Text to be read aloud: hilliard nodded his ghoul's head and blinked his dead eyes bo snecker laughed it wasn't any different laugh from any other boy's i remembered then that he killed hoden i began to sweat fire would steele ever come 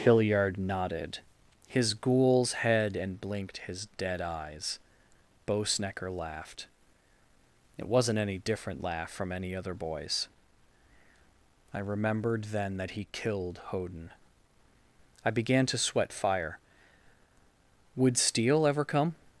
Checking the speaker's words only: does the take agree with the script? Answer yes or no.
yes